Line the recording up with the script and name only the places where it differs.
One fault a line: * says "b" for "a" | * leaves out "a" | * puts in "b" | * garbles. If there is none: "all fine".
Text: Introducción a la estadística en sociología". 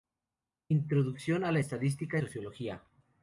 * leaves out "en"